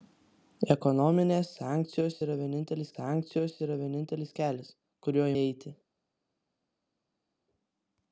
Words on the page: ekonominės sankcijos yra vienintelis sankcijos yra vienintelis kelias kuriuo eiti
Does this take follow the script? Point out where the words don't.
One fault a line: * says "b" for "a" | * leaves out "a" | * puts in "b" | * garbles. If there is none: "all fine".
all fine